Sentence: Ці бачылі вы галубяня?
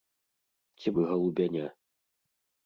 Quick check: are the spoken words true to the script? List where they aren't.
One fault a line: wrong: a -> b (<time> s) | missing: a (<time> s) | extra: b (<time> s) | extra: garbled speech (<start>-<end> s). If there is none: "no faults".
missing: бачылі (0.9 s)